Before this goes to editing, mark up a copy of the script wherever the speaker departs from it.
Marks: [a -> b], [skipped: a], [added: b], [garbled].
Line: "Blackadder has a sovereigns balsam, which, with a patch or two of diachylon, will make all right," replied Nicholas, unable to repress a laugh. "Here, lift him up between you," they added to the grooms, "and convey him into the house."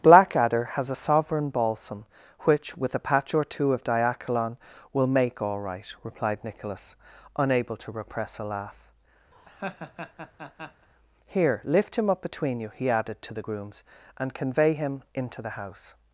"Blackadder has a [sovereigns -> sovereign] balsam, which, with a patch or two of diachylon, will make all right," replied Nicholas, unable to repress a laugh. "Here, lift him up between you," [they -> he] added to the grooms, "and convey him into the house."